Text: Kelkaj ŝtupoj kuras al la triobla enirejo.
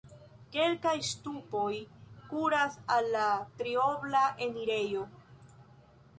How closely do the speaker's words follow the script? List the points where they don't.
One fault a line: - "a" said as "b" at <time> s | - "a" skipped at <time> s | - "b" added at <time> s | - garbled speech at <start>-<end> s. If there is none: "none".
none